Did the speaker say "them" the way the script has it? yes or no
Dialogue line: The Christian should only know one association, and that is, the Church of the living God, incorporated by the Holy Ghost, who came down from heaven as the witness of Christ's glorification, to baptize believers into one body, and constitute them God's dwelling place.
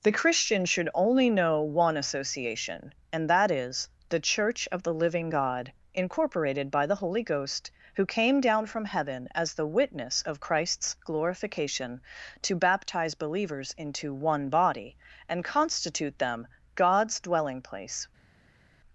yes